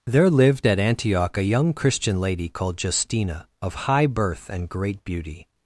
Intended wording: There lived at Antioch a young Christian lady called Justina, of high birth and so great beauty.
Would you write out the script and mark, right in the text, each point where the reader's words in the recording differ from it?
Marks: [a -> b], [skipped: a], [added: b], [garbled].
There lived at Antioch a young Christian lady called Justina, of high birth and [skipped: so] great beauty.